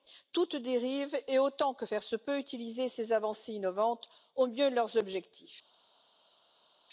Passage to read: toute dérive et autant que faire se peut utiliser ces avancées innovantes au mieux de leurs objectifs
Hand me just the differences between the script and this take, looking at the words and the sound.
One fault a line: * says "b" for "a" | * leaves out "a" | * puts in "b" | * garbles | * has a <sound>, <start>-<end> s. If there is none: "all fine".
all fine